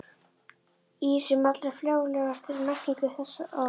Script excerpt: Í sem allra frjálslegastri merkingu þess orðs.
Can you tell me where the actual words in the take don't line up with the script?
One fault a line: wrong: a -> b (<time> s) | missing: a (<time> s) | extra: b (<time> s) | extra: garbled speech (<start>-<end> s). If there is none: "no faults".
no faults